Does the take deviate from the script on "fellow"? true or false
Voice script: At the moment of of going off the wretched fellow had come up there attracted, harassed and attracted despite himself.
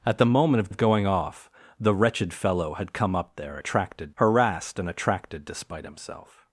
false